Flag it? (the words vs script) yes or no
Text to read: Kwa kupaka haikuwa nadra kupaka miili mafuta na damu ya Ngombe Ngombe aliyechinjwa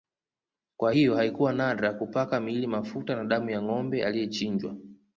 yes